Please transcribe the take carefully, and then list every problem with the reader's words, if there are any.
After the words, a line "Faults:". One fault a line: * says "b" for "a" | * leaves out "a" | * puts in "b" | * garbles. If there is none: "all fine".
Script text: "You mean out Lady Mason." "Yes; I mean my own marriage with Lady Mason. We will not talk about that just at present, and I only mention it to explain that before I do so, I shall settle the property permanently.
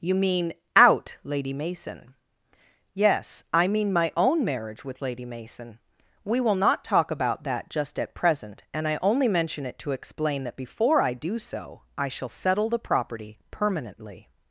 "You mean out Lady Mason." "Yes; I mean my own marriage with Lady Mason. We will not talk about that just at present, and I only mention it to explain that before I do so, I shall settle the property permanently.
Faults:
all fine